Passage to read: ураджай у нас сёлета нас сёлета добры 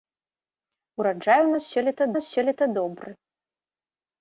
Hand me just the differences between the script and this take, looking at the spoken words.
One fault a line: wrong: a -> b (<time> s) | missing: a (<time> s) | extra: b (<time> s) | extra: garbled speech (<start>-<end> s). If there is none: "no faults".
no faults